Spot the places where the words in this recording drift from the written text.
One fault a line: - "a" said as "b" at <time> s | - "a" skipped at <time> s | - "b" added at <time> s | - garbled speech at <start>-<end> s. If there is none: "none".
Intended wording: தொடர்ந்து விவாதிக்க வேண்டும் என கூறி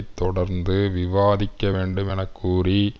none